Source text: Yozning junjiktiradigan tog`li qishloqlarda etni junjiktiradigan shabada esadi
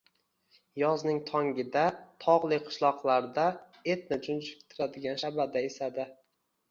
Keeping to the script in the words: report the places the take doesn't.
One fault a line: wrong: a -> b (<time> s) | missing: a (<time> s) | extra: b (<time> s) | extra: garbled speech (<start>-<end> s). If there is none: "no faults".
wrong: junjiktiradigan -> tongida (1.3 s)